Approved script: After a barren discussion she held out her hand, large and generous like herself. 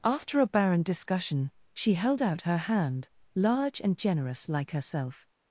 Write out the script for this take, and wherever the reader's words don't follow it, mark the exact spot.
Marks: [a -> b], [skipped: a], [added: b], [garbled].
After a barren discussion she held out her hand, large and generous like herself.